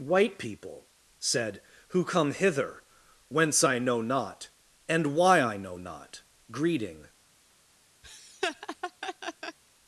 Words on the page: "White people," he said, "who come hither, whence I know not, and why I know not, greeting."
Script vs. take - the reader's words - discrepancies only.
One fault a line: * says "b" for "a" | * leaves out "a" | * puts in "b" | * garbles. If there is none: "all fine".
* leaves out "he"